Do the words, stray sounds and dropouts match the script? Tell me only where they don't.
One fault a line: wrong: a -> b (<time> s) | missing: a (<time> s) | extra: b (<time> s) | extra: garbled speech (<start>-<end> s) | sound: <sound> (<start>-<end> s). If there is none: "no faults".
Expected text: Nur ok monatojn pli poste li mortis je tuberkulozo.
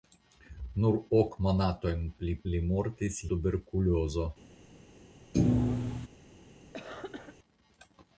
missing: poste (2.3 s)
missing: je (3.2 s)
sound: thud (5.3-6.1 s)
sound: cough (6.7-7.4 s)